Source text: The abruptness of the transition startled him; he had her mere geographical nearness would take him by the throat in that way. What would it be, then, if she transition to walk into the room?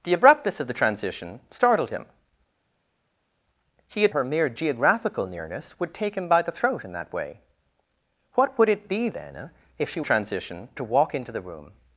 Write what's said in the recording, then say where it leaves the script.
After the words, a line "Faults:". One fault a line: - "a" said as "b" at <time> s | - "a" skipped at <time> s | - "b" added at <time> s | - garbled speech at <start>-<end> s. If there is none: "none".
The abruptness of the transition startled him; he had her mere geographical nearness would take him by the throat in that way. What would it be, then, if she transition to walk into the room?
Faults:
none